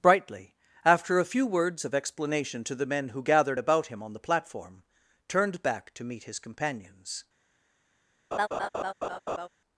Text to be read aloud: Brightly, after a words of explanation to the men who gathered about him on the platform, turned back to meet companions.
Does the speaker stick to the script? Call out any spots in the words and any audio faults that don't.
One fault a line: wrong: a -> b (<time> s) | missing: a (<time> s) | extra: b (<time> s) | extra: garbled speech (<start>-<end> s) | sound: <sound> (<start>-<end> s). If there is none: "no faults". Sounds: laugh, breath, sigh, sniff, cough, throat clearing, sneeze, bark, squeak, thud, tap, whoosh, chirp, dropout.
extra: few (1.2 s)
extra: his (6.2 s)
sound: laugh (8.3-9.5 s)